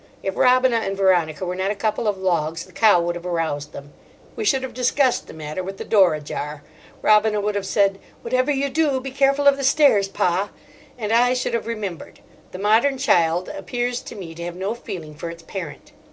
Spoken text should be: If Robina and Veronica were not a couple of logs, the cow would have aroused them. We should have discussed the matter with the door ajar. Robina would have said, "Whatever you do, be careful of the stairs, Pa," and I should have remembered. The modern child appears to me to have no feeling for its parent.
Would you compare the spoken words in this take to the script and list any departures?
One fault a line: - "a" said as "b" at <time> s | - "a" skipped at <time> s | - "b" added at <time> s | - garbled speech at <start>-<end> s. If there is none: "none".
none